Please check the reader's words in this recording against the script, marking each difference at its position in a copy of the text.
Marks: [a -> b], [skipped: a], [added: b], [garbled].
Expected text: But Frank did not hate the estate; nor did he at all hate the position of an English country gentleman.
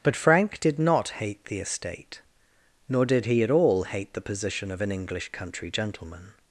But Frank did not hate the estate; nor did he at all hate the position of an English country gentleman.